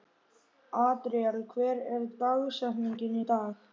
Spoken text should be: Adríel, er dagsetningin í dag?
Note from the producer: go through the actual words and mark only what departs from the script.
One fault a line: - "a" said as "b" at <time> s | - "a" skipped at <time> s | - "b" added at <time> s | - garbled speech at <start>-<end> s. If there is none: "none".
- "hver" added at 1.5 s